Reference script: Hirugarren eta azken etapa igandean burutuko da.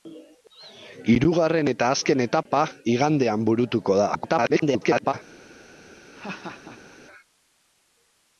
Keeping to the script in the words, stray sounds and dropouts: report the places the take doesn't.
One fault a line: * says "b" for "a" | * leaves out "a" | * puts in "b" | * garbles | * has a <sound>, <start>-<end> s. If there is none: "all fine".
* garbles
* has a laugh, 6.1-7.0 s